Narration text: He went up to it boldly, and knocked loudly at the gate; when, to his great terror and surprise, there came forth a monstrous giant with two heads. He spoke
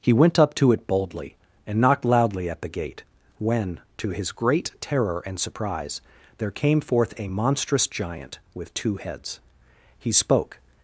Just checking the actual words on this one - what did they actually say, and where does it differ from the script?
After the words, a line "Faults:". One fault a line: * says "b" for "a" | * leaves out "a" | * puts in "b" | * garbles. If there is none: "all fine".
He went up to it boldly, and knocked loudly at the gate; when, to his great terror and surprise, there came forth a monstrous giant with two heads. He spoke
Faults:
all fine